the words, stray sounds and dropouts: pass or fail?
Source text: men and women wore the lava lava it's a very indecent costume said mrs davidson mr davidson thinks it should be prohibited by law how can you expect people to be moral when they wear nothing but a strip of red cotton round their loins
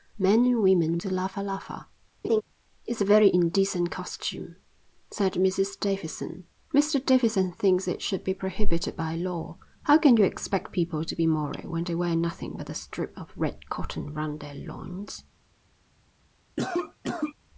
fail